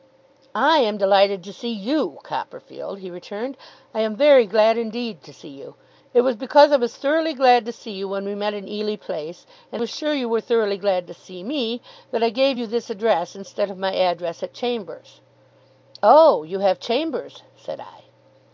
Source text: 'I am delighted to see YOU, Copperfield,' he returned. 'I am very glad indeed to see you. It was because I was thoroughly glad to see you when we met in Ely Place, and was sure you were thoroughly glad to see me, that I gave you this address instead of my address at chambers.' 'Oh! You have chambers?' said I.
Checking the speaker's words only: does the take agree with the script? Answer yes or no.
yes